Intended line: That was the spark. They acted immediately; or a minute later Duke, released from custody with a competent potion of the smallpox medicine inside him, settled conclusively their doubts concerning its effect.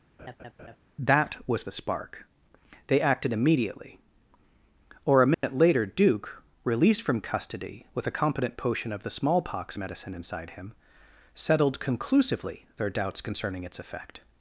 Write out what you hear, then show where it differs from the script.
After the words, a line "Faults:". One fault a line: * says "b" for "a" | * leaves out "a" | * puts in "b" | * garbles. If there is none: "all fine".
That was the spark. They acted immediately; or a minute later Duke, released from custody with a competent potion of the smallpox medicine inside him, settled conclusively their doubts concerning its effect.
Faults:
all fine